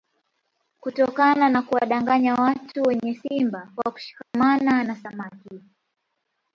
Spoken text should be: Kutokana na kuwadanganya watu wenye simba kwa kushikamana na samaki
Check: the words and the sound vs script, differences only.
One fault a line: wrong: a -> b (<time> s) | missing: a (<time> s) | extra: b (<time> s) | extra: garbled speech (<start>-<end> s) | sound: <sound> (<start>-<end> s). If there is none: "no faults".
sound: dropout (4.2-4.3 s)